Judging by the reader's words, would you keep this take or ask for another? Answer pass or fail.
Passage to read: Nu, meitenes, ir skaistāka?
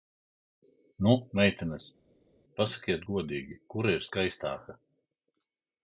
fail